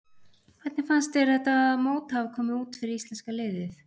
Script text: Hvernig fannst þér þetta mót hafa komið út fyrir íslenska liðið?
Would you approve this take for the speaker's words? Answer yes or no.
yes